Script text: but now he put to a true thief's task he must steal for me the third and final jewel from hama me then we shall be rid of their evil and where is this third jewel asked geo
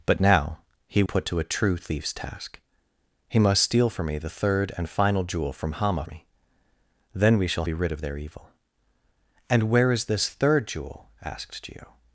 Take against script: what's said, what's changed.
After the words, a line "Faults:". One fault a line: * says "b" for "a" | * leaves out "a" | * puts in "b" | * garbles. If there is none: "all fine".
but now he put to a true thief's task he must steal for me the third and final jewel from hama me then we shall be rid of their evil and where is this third jewel asked geo
Faults:
all fine